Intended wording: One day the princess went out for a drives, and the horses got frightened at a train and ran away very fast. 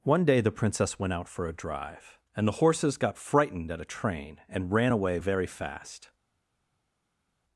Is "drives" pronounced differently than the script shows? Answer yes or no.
yes